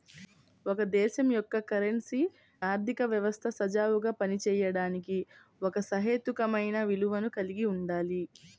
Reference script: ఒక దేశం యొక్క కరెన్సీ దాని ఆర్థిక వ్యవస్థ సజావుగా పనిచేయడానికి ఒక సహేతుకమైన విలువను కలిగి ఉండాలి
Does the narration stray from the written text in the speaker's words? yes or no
yes